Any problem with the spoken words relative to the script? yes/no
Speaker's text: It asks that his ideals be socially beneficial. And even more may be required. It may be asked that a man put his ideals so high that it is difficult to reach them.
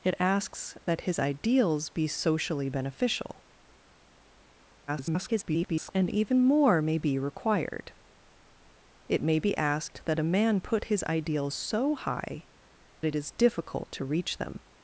yes